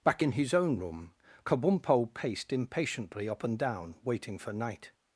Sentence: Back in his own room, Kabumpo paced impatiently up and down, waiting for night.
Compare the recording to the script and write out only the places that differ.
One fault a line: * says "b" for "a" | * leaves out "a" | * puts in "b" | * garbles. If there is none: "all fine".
all fine